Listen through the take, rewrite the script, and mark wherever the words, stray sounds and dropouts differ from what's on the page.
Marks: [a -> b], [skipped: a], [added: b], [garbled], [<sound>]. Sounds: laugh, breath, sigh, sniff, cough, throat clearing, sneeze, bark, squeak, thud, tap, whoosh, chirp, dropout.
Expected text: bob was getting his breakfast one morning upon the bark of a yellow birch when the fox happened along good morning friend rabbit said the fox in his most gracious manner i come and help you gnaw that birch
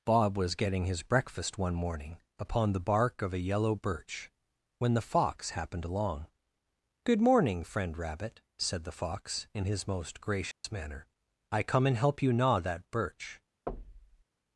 bob was getting his breakfast one morning upon the bark of a yellow birch when the fox happened along good morning friend rabbit said the fox in his most gracious [dropout] manner i come and help you gnaw that birch [thud]